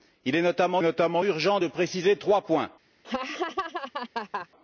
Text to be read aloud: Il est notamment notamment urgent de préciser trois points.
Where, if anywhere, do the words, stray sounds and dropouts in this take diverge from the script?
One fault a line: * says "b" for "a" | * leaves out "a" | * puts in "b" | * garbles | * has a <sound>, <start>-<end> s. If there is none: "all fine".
* has a laugh, 3.0-4.5 s